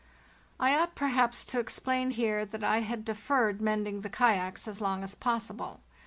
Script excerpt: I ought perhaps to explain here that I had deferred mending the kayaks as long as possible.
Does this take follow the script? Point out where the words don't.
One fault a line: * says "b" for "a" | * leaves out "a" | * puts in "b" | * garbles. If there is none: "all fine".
all fine